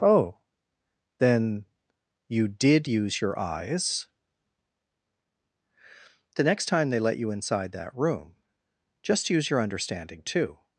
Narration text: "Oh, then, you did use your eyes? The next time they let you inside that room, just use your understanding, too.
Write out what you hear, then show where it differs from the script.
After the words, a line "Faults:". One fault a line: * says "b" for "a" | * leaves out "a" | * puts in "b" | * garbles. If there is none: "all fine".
"Oh, then, you did use your eyes? The next time they let you inside that room, just use your understanding, too.
Faults:
all fine